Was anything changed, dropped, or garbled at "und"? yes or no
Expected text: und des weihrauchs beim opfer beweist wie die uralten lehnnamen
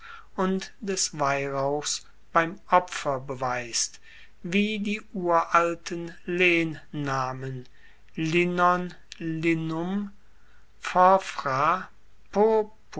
no